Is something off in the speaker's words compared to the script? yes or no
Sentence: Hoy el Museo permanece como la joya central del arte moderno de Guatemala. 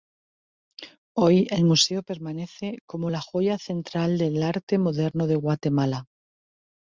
no